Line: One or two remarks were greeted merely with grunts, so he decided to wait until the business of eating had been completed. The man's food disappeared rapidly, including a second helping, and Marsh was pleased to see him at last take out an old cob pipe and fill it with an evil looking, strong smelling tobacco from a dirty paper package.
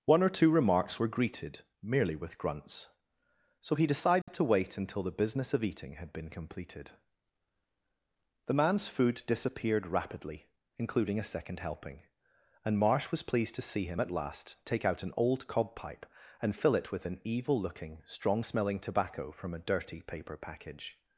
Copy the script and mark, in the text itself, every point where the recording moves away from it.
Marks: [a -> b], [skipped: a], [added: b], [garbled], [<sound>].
One or two remarks were greeted merely with grunts, so he decided [dropout] to wait until the business of eating had been completed. The man's food disappeared rapidly, including a second helping, and Marsh was pleased to see him at last take out an old cob pipe and fill it with an evil looking, strong smelling tobacco from a dirty paper package.